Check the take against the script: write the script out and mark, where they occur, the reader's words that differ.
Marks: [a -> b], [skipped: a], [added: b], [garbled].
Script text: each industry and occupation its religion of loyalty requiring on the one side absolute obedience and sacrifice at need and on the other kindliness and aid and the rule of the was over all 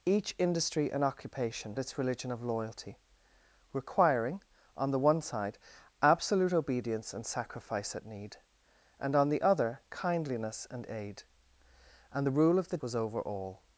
each industry and occupation its religion of loyalty requiring on the one side absolute obedience and sacrifice at need and on the other kindliness and aid and the rule of the was over all